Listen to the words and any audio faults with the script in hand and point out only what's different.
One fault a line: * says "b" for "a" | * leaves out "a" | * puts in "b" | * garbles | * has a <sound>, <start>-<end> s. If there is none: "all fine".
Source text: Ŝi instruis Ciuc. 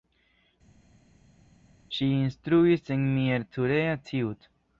* puts in "en Miercurea"